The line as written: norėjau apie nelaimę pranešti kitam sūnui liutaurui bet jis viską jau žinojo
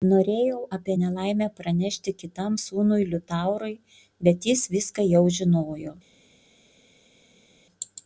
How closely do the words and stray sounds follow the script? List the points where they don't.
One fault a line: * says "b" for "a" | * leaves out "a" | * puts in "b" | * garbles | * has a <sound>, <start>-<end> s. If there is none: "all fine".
all fine